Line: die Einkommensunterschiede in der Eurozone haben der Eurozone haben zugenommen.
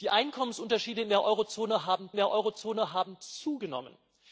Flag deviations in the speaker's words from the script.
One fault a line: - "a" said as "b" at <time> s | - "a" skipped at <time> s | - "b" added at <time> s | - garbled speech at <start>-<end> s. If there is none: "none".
none